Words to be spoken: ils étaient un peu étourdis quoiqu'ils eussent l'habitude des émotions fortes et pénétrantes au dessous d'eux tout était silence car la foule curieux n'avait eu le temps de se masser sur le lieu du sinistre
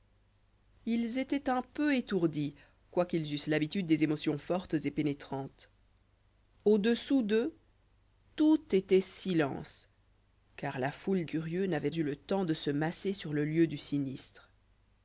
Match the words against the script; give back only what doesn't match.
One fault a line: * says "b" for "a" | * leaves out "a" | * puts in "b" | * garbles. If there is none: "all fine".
all fine